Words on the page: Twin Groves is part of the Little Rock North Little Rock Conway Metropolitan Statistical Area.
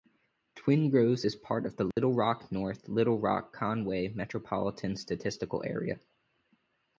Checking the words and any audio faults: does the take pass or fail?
fail